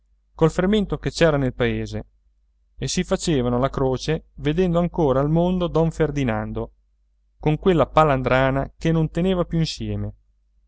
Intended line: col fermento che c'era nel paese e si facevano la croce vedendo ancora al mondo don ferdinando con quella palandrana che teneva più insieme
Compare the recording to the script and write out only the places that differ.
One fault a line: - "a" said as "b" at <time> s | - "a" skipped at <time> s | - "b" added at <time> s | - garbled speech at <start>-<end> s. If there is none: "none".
- "non" added at 8.9 s